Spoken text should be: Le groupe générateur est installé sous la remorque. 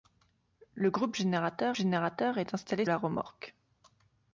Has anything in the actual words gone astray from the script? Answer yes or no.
yes